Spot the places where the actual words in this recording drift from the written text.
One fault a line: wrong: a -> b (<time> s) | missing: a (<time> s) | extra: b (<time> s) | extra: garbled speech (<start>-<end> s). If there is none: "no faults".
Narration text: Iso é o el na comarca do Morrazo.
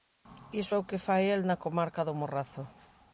extra: que fai (0.9 s)